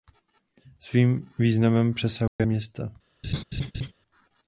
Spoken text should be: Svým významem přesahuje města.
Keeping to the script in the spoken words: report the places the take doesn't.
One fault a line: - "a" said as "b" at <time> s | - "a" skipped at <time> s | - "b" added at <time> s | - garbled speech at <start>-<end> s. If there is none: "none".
none